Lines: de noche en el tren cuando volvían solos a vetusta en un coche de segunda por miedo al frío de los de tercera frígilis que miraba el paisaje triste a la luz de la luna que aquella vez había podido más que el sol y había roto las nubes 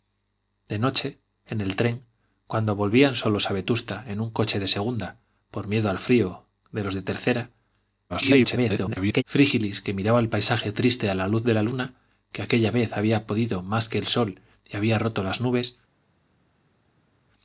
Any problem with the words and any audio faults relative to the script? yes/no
yes